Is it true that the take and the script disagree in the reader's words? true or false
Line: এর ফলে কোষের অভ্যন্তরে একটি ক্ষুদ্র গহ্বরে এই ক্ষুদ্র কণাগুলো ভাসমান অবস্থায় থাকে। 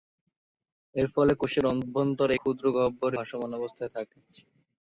true